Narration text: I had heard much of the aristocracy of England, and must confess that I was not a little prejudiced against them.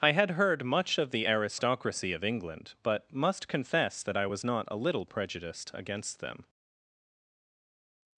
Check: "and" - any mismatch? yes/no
yes